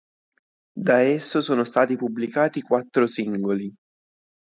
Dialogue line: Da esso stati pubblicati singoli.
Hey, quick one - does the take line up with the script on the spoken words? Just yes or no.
no